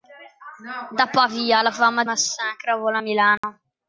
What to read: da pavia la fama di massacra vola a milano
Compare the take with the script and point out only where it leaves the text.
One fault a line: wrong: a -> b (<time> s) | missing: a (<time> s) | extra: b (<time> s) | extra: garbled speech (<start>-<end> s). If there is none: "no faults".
missing: di (2.0 s)